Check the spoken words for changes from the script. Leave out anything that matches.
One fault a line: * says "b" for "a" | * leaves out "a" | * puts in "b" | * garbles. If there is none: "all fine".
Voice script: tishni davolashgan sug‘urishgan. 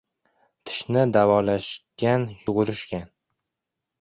all fine